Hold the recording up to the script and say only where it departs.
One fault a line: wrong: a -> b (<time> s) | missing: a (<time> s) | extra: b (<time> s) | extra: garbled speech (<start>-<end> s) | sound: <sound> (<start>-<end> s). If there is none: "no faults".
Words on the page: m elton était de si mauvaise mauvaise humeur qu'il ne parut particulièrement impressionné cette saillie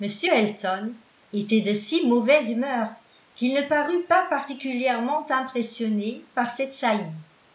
missing: mauvaise (2.5 s)
extra: pas (4.0 s)
extra: par (6.3 s)